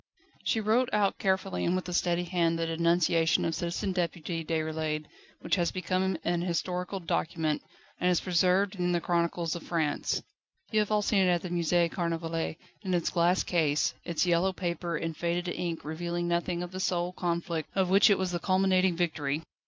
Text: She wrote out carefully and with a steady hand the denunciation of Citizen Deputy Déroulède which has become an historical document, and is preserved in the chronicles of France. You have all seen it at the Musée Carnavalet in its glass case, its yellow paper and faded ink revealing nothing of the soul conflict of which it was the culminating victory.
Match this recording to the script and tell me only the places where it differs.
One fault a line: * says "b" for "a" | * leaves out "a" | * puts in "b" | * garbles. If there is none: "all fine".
all fine